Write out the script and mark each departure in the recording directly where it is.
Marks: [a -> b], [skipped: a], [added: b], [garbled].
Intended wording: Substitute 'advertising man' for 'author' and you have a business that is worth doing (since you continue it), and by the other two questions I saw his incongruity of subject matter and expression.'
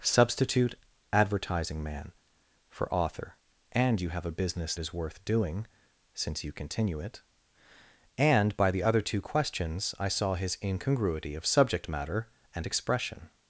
Substitute 'advertising man' for 'author' and you have a business [skipped: that] is worth doing (since you continue it), and by the other two questions I saw his incongruity of subject matter and expression.'